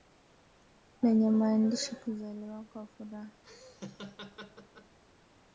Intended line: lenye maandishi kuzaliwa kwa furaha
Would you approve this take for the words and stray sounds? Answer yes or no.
no